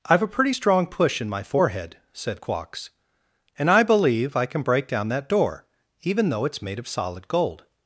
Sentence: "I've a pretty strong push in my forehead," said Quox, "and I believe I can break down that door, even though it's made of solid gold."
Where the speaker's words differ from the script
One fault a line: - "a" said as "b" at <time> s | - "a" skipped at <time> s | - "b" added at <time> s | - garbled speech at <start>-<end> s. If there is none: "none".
none